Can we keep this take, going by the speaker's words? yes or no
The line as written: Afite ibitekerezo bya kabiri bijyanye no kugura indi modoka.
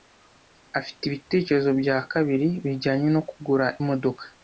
no